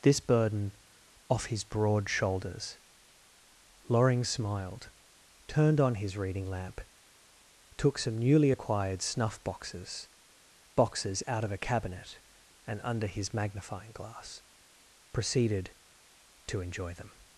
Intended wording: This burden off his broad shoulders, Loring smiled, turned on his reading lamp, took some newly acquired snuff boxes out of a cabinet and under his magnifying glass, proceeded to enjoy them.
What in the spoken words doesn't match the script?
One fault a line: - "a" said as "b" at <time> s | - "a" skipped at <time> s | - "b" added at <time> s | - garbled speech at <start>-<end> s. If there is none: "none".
- "boxes" added at 10.8 s